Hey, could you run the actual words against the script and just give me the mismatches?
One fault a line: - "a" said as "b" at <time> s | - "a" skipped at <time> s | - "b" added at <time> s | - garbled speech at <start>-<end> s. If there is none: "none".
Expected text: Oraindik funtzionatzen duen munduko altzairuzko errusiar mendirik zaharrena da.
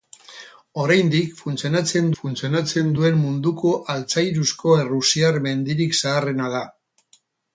- "funtzionatzen" added at 2.2 s